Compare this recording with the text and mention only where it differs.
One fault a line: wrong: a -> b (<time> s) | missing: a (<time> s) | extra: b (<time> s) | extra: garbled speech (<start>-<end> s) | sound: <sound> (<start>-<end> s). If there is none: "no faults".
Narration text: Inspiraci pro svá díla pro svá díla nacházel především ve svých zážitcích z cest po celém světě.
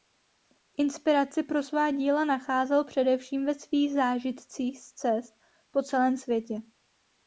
missing: pro svá díla (2.2 s)